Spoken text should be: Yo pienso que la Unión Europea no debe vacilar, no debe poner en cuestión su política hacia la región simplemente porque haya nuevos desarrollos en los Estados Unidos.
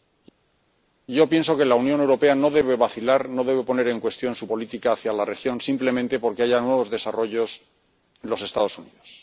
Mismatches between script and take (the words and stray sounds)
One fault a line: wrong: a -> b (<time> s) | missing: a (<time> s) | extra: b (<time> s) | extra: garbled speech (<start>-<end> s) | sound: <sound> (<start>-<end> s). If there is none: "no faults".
no faults